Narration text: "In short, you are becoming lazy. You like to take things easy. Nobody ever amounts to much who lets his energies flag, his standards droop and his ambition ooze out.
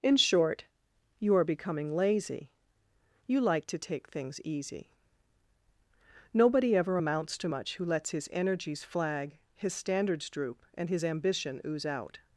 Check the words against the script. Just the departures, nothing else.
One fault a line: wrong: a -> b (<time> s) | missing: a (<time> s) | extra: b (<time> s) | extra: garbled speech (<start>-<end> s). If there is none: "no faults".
no faults